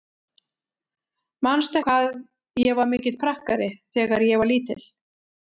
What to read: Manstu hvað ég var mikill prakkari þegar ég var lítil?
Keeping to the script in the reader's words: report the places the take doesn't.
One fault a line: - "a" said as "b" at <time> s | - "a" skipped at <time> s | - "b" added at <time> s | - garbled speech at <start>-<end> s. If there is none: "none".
none